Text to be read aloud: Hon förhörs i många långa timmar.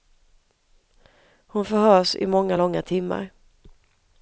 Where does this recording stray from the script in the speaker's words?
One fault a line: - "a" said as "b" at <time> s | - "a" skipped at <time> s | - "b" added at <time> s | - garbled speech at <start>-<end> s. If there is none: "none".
none